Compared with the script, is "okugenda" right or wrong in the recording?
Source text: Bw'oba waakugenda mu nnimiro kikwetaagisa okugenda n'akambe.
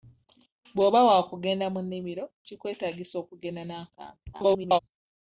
right